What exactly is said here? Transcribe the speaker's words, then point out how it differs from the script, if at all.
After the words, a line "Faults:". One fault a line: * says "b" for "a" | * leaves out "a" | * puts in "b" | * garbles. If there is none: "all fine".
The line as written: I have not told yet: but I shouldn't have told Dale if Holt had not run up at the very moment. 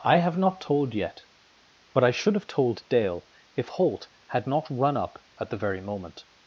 I have not told yet: but I should have told Dale if Holt had not run up at the very moment.
Faults:
* says "should" for "shouldn't"